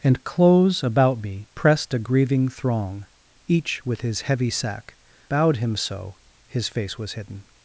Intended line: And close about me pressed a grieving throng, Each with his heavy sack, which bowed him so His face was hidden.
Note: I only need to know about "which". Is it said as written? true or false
false